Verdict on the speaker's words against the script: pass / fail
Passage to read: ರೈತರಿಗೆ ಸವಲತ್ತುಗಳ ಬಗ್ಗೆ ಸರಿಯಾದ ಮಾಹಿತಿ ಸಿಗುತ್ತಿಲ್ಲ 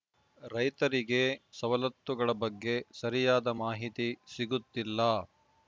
pass